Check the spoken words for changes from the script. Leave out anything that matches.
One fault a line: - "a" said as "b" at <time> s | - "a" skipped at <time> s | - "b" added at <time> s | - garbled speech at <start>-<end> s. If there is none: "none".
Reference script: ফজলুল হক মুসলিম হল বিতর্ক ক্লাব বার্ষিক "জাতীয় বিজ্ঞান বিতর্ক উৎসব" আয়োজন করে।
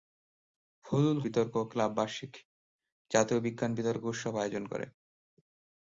- "হক মুসলিম হল" skipped at 1.2 s